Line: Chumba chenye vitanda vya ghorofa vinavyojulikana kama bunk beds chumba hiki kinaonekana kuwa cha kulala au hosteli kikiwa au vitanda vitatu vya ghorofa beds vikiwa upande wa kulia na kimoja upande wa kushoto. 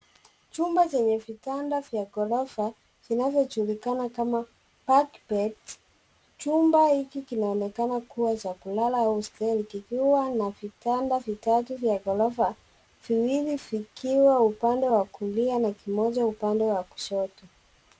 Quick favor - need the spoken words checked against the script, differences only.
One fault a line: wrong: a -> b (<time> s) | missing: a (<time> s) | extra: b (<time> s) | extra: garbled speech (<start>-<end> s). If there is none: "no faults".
wrong: au -> na (10.3 s)
wrong: beds -> viwili (13.1 s)